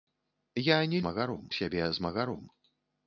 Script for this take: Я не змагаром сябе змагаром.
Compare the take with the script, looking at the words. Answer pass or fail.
pass